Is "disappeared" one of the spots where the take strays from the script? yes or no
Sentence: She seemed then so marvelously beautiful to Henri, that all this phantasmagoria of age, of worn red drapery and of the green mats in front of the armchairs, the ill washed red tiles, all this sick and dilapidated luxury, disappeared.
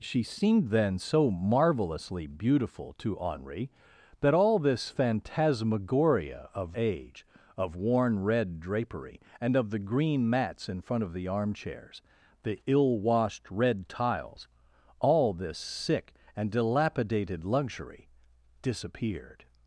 no